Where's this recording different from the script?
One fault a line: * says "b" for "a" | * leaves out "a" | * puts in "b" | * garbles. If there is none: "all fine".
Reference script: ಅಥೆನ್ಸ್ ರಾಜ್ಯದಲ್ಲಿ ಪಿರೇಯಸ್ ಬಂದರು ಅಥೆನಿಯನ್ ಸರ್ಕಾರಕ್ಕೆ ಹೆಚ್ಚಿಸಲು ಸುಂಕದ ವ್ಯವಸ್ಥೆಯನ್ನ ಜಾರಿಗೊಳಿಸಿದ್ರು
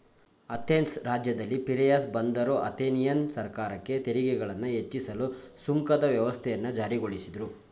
* puts in "ತೆರಿಗೆಗಳನ್ನ"